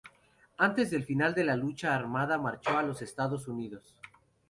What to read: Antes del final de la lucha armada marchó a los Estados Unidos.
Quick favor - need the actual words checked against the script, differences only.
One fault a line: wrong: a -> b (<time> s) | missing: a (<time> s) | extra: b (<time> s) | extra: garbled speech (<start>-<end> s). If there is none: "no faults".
no faults